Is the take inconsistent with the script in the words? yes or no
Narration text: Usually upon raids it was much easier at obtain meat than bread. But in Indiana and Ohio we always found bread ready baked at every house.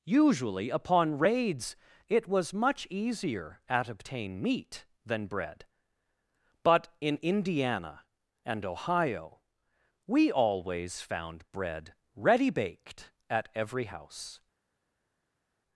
no